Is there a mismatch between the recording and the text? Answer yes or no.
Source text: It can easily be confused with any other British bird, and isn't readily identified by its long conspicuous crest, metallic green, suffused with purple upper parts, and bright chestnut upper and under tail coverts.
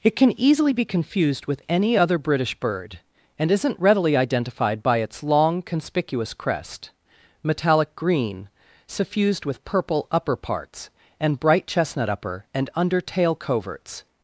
no